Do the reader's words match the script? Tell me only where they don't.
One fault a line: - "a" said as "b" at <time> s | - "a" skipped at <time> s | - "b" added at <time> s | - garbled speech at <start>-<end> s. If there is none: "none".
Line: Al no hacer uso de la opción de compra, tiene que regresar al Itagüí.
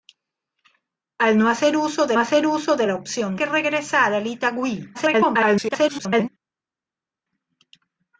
- "la opción" said as "hacer uso" at 2.2 s
- "compra tiene" said as "la opción" at 2.9 s
- garbled speech at 4.9-6.3 s